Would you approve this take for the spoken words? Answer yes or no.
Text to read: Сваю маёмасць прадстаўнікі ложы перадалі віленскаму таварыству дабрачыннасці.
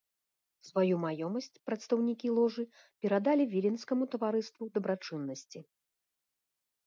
yes